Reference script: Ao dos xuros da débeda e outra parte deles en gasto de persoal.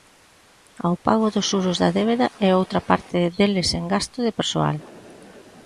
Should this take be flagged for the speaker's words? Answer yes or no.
yes